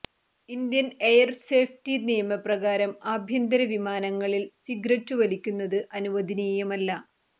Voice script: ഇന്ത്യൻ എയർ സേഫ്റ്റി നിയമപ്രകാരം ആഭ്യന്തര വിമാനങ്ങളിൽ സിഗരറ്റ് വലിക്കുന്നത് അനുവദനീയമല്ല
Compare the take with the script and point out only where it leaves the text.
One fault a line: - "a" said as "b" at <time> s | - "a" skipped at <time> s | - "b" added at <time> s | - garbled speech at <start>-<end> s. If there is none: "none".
none